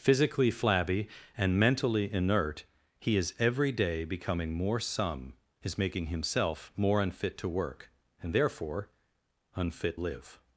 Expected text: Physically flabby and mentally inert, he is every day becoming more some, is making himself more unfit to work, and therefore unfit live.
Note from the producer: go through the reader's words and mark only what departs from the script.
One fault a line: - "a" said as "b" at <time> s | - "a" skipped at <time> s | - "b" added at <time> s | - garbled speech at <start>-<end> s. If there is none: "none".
none